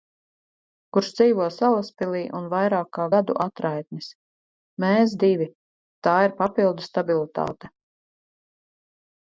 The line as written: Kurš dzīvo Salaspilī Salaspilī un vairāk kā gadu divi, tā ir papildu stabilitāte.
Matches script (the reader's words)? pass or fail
fail